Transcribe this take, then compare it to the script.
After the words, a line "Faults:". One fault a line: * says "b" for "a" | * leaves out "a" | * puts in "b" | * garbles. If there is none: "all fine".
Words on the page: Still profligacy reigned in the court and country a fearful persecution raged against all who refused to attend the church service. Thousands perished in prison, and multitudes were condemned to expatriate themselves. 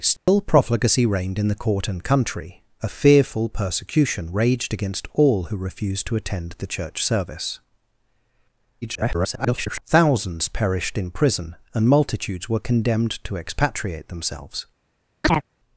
Still profligacy reigned in the court and country a fearful persecution raged against all who refused to attend the church service. [garbled] Thousands perished in prison, and multitudes were condemned to expatriate themselves.
Faults:
* garbles